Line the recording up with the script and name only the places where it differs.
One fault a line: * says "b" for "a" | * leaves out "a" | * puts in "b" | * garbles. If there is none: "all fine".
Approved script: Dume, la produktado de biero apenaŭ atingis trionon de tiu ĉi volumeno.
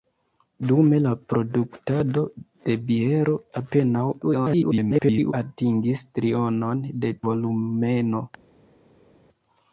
* garbles
* leaves out "tiu ĉi"